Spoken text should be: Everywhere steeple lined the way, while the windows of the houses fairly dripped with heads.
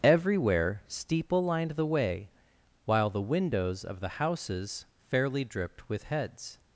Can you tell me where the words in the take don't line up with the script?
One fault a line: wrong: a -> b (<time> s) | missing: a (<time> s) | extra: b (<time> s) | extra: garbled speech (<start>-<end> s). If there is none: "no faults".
no faults